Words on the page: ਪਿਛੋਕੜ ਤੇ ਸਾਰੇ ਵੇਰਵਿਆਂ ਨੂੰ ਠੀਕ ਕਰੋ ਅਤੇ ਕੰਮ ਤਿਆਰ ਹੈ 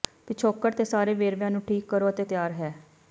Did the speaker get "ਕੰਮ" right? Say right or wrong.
wrong